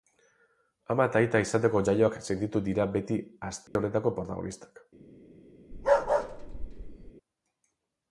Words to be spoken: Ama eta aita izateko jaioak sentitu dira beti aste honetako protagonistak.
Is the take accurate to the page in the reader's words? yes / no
yes